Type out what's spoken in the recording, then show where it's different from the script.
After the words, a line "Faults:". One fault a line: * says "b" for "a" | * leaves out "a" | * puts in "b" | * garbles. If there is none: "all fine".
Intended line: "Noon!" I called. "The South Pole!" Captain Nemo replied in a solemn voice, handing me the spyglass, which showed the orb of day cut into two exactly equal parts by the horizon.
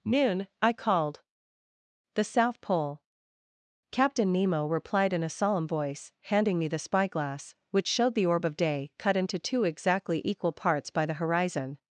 "Noon!" I called. "The South Pole!" Captain Nemo replied in a solemn voice, handing me the spyglass, which showed the orb of day cut into two exactly equal parts by the horizon.
Faults:
all fine